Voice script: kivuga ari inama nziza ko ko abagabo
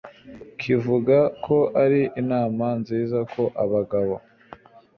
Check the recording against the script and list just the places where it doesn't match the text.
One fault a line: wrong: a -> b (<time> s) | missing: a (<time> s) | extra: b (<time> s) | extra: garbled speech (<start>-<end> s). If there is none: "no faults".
extra: ko (1.4 s)
missing: ko (3.4 s)